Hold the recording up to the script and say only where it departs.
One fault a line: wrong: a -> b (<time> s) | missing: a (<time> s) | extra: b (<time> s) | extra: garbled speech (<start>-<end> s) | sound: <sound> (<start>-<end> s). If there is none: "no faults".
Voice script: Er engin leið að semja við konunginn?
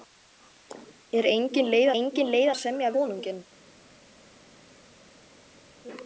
extra: engin leið (2.0 s)
missing: við (2.9 s)